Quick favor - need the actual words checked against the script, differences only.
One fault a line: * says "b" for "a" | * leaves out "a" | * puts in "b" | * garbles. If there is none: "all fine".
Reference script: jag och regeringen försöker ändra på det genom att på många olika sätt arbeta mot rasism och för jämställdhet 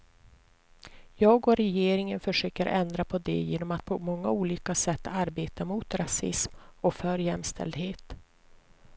all fine